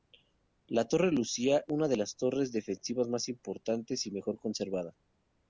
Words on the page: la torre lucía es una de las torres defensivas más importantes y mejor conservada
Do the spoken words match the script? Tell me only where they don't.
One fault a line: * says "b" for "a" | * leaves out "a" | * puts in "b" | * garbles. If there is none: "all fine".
* leaves out "es"